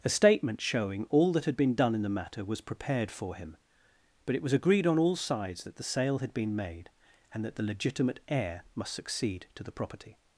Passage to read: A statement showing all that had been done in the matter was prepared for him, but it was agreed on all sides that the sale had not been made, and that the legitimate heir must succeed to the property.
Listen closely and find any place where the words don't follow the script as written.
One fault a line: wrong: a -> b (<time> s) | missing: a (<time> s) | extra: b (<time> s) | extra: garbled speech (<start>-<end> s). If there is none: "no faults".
missing: not (6.3 s)